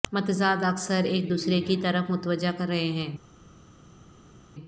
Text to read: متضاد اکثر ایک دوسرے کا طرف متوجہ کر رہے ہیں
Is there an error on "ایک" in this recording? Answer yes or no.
no